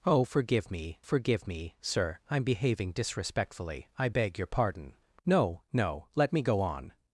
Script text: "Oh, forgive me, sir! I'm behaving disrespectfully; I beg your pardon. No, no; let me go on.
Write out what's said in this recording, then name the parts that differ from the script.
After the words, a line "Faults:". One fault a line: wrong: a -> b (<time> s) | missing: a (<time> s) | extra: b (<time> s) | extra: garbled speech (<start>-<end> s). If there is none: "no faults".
"Oh, forgive me forgive me, sir! I'm behaving disrespectfully; I beg your pardon. No, no; let me go on.
Faults:
extra: forgive me (1.0 s)